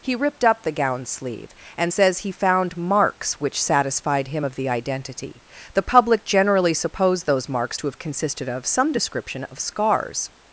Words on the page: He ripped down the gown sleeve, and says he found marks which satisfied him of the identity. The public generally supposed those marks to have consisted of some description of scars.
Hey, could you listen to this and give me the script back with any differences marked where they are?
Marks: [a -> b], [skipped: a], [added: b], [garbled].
He ripped [down -> up] the gown sleeve, and says he found marks which satisfied him of the identity. The public generally supposed those marks to have consisted of some description of scars.